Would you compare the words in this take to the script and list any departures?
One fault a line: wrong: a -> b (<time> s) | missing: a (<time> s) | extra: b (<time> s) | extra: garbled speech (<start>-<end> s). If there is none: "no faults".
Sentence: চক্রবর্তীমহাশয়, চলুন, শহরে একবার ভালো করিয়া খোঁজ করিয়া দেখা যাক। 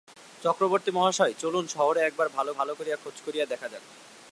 extra: ভালো (2.6 s)